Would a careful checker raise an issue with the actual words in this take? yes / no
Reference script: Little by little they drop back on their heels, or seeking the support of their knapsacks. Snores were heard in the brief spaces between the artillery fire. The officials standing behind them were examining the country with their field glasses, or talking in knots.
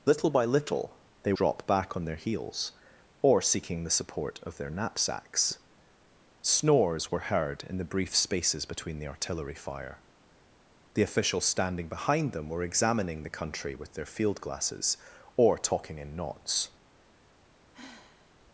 no